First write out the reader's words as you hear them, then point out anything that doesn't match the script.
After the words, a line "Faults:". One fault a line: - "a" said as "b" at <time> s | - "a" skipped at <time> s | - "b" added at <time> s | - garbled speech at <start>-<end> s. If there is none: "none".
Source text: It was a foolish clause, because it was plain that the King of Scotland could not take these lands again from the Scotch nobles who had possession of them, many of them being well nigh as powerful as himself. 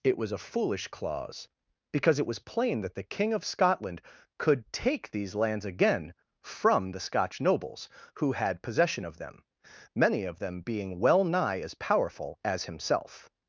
It was a foolish clause, because it was plain that the King of Scotland could take these lands again from the Scotch nobles who had possession of them, many of them being well nigh as powerful as himself.
Faults:
- "not" skipped at 4.7 s